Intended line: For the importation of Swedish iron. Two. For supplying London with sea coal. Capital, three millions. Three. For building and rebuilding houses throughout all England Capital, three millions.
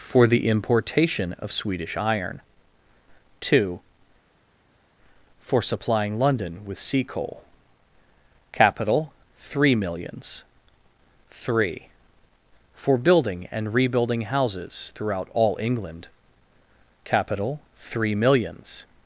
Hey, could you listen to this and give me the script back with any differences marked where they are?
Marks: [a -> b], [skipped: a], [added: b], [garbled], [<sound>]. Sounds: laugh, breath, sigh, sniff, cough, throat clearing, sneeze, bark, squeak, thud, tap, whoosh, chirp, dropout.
For the importation of Swedish iron. Two. For supplying London with sea coal. Capital, three millions. Three. For building and rebuilding houses throughout all England Capital, three millions.